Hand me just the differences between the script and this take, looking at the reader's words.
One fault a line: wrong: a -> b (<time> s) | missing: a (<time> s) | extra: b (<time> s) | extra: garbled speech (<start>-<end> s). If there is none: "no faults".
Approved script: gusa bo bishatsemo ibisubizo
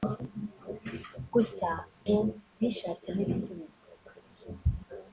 no faults